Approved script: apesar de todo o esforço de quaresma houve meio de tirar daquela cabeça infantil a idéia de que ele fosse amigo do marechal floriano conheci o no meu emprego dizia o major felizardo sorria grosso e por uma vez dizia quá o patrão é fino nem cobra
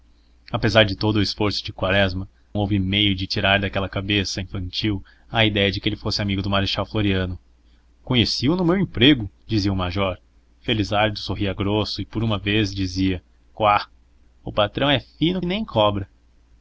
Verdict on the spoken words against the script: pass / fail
pass